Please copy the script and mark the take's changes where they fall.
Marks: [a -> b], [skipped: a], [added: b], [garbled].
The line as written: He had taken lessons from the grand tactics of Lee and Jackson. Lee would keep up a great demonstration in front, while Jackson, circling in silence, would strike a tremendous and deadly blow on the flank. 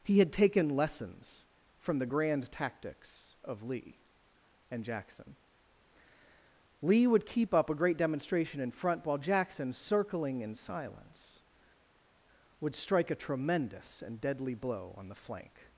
He had taken lessons from the grand tactics of Lee and Jackson. Lee would keep up a great demonstration in front, while Jackson, circling in silence, would strike a tremendous and deadly blow on the flank.